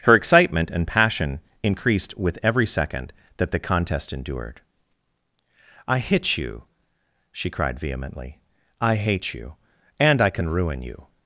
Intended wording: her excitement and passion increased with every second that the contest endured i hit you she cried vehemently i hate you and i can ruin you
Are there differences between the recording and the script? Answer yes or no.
no